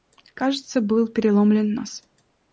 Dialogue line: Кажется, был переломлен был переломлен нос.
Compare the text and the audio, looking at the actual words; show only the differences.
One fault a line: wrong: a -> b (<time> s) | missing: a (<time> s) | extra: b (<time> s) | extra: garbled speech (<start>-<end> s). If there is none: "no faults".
missing: был переломлен (1.8 s)